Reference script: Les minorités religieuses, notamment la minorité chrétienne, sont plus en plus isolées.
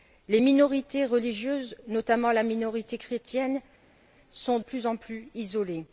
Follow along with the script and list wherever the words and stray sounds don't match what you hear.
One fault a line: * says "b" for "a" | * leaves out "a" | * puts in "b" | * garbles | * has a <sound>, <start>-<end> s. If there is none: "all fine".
all fine